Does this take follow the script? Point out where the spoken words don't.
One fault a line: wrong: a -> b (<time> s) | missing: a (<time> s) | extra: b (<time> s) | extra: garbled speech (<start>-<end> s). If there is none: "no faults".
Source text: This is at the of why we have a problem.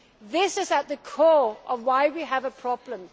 extra: core (1.0 s)